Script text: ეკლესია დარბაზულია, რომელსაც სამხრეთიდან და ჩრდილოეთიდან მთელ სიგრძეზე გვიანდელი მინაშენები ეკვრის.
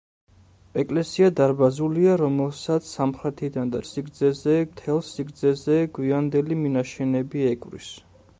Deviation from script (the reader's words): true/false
true